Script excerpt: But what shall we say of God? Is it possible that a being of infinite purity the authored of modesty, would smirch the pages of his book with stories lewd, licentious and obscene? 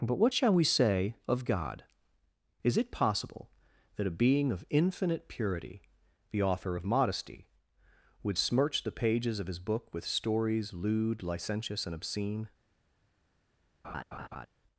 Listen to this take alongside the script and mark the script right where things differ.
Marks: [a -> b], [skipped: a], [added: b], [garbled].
But what shall we say of God? Is it possible that a being of infinite purity the [authored -> author] of modesty, would smirch the pages of his book with stories lewd, licentious and obscene?